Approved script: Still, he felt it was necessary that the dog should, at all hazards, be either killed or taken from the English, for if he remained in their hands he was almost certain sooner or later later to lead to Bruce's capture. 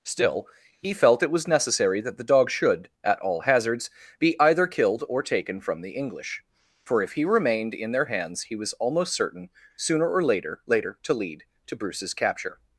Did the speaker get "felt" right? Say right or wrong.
right